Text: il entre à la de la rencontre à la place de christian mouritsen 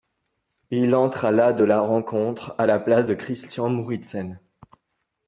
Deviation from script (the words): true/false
false